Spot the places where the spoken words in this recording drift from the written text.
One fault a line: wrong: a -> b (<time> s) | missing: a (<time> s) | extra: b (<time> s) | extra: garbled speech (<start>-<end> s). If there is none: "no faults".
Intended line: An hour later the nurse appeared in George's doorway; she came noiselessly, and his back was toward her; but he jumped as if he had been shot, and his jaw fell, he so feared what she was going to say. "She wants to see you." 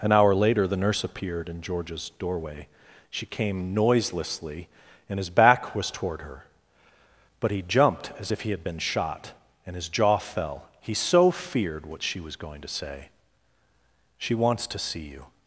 no faults